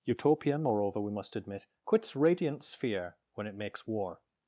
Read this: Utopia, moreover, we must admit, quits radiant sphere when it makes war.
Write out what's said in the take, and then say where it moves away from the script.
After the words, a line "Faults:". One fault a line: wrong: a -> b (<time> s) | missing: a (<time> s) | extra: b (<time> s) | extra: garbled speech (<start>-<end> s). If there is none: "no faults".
Utopia, moreover, we must admit, quits radiant sphere when it makes war.
Faults:
no faults